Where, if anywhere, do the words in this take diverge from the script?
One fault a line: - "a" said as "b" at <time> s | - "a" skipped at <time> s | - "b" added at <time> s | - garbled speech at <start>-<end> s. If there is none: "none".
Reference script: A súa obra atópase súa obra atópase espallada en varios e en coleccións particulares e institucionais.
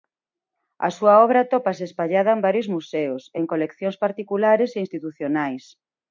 - "súa obra atópase" skipped at 1.8 s
- "museos" added at 2.8 s